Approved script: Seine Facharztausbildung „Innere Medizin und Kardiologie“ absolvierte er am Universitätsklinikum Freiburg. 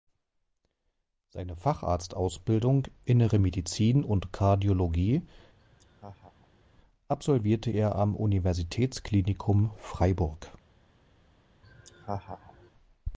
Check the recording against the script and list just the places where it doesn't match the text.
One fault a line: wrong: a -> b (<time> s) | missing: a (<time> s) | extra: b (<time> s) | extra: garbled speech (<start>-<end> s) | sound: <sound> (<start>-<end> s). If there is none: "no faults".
sound: laugh (5.6-6.6 s)
sound: laugh (11.6-12.7 s)